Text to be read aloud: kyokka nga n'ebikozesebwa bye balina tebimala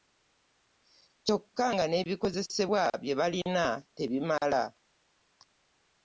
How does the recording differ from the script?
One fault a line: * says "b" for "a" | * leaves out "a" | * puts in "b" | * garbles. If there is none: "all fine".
all fine